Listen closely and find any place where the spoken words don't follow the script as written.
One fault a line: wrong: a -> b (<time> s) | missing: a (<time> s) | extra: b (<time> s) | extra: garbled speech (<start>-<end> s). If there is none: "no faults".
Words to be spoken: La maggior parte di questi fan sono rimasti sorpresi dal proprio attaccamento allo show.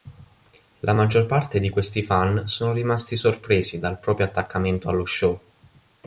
no faults